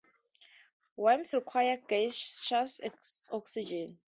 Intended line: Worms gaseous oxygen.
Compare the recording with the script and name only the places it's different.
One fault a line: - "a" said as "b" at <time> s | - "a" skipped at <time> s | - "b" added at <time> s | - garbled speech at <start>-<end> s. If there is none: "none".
- "require" added at 1.3 s